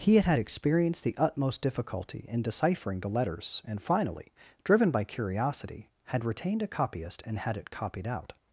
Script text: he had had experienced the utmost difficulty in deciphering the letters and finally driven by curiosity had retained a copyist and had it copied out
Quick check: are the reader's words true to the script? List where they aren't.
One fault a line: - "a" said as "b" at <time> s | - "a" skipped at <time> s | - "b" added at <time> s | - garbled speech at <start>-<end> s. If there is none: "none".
none